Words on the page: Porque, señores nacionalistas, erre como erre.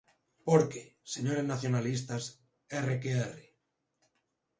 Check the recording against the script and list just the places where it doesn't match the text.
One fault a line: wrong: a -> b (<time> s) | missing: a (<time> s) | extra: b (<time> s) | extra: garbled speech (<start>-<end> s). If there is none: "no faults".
wrong: como -> que (3.0 s)